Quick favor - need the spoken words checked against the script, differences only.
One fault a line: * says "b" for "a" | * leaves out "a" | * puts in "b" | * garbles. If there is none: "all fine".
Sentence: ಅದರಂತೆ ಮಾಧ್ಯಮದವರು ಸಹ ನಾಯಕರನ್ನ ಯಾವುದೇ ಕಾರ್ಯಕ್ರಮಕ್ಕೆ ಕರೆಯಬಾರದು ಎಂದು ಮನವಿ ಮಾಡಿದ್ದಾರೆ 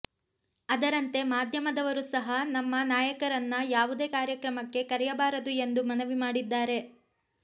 * puts in "ನಮ್ಮ"